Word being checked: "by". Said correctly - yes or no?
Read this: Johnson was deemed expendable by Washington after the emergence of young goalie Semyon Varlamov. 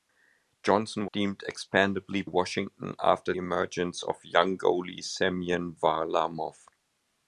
no